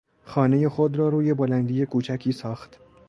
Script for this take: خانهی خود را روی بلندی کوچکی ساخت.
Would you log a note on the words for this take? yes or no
no